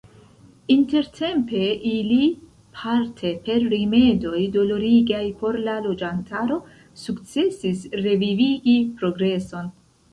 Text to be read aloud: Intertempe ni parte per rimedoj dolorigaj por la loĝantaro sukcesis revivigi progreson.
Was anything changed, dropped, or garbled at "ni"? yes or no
yes